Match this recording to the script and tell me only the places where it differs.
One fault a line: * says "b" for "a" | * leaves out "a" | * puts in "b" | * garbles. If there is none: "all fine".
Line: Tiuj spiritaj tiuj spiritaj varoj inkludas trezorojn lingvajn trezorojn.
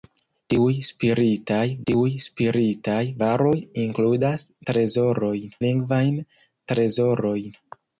all fine